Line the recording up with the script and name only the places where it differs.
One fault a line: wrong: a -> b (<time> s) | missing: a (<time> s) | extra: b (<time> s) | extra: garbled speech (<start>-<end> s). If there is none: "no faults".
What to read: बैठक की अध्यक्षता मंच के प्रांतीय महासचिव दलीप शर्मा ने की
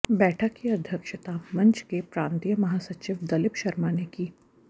no faults